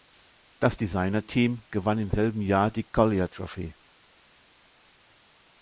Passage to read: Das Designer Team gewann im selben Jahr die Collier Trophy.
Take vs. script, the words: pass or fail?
pass